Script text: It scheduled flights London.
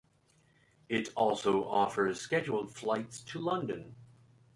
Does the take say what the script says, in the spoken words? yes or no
no